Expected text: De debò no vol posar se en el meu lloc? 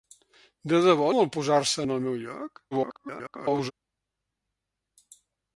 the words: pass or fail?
fail